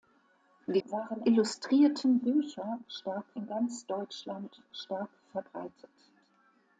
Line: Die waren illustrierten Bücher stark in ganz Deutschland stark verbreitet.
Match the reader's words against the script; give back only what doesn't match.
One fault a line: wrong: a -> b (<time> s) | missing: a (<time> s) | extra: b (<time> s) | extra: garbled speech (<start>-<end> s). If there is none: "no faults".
no faults